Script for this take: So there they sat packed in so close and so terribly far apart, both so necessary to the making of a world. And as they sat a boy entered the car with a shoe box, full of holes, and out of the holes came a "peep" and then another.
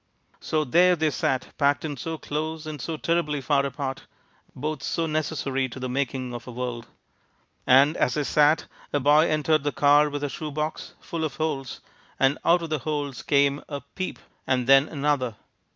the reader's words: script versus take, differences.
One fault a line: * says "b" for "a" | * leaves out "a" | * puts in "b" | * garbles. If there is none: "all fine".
all fine